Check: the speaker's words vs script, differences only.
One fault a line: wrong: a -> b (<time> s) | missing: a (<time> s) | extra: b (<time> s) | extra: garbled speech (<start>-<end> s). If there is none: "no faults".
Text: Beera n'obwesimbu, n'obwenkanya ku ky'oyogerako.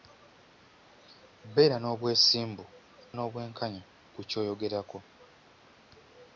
no faults